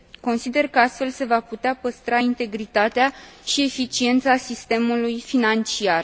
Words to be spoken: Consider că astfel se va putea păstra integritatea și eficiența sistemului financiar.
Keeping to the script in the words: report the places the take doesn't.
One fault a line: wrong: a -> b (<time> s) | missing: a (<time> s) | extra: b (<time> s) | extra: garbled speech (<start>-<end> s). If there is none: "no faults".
no faults